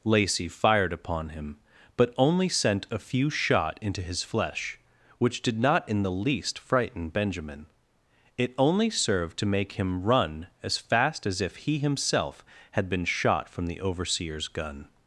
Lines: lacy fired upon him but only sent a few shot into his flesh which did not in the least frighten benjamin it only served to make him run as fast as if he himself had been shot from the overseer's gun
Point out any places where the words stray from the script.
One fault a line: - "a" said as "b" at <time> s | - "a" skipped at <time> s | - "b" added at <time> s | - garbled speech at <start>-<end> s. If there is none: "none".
none